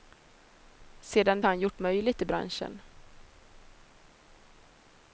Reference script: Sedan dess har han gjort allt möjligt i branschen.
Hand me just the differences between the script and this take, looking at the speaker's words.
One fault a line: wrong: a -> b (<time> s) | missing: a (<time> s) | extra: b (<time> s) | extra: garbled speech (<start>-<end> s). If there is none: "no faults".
missing: dess (1.4 s)
missing: allt (1.8 s)